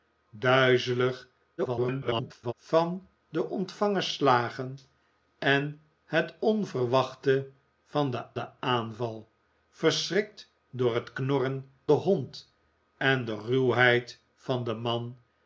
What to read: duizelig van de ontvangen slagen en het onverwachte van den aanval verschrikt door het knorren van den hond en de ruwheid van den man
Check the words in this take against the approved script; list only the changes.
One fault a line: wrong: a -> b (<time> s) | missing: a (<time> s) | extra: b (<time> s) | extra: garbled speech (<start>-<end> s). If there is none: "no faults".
extra: garbled speech (1.6-2.5 s)
extra: den (8.3 s)
missing: van (11.7 s)